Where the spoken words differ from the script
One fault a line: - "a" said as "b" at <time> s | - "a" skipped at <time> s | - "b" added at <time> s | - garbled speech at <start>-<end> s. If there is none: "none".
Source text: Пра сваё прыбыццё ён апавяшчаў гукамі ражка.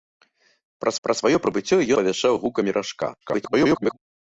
- "пра" added at 1.1 s
- "ён" skipped at 1.8 s
- garbled speech at 3.2-4.0 s